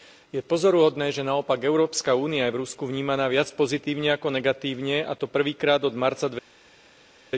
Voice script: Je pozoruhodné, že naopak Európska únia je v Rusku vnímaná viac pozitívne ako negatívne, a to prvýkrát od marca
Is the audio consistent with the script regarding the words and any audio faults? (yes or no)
yes